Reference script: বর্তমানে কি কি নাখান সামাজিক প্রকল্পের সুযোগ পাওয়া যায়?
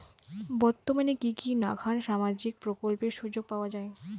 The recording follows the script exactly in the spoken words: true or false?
true